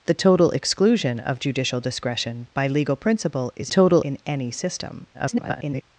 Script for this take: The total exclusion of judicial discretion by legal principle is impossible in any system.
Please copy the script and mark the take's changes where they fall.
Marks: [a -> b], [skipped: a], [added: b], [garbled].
The total exclusion of judicial discretion by legal principle is [impossible -> total] in any system. [garbled]